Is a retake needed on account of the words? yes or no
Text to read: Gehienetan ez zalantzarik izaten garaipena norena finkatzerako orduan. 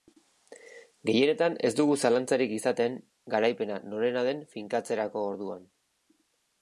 yes